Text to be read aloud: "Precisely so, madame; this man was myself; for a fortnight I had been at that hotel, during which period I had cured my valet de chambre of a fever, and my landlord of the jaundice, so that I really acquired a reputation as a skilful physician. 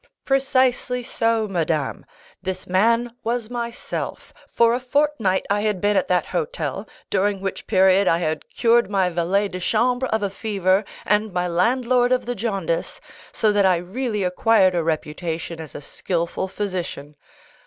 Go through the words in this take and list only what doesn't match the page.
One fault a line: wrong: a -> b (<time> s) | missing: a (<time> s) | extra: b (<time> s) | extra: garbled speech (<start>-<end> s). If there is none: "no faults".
no faults